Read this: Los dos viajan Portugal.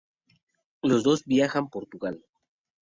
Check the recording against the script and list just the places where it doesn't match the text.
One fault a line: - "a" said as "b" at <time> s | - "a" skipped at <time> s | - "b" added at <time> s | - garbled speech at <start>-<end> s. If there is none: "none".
none